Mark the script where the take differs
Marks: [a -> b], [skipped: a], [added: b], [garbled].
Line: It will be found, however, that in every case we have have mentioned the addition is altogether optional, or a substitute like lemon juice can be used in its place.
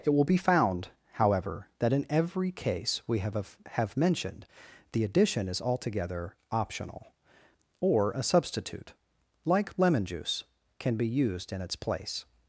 It will be found, however, that in every case we have have mentioned the addition is altogether optional, or a substitute like lemon juice can be used in its place.